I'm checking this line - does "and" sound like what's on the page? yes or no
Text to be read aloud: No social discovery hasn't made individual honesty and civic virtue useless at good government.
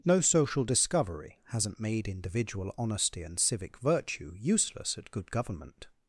yes